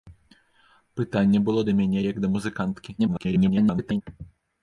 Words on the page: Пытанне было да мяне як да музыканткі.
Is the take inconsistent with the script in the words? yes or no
yes